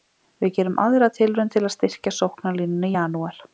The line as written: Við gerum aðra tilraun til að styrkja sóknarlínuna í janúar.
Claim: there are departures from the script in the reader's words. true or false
false